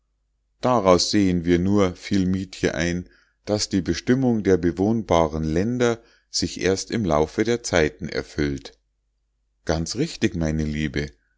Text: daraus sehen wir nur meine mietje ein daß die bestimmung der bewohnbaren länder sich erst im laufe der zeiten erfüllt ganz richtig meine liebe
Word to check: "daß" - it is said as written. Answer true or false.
true